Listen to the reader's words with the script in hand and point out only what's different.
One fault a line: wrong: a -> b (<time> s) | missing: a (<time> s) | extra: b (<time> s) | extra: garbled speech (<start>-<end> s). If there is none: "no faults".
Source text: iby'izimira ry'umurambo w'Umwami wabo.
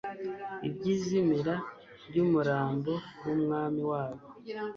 no faults